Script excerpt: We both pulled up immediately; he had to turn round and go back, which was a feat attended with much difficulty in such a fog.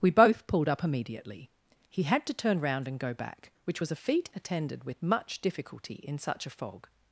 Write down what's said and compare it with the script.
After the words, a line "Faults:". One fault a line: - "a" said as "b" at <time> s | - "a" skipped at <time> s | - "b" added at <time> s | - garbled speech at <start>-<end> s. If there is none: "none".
We both pulled up immediately; he had to turn round and go back, which was a feat attended with much difficulty in such a fog.
Faults:
none